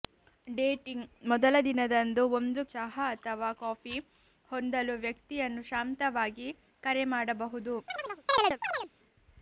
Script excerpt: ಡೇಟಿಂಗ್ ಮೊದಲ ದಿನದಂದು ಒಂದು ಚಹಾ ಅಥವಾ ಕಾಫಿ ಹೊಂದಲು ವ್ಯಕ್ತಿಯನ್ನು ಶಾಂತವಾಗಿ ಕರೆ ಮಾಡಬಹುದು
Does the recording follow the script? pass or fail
pass